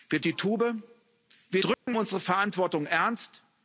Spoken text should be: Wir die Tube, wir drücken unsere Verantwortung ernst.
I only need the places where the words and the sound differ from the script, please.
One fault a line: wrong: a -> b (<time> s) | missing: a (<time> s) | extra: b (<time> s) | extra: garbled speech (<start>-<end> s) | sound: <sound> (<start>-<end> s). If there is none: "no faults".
sound: dropout (1.7-1.9 s)